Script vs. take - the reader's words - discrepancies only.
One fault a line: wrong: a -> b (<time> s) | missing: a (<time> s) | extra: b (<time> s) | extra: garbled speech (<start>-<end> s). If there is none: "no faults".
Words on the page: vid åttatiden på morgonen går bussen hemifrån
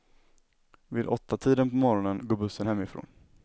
no faults